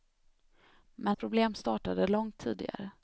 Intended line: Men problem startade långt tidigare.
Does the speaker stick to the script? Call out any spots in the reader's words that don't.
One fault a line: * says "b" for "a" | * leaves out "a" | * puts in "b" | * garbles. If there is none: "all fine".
all fine